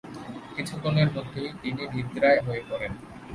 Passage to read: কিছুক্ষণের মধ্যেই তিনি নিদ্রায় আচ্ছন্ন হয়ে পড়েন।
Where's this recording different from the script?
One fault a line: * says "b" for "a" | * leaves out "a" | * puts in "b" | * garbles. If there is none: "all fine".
* leaves out "আচ্ছন্ন"